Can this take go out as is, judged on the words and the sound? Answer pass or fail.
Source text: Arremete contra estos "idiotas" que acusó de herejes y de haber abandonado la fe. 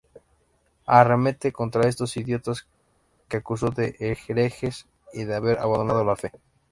pass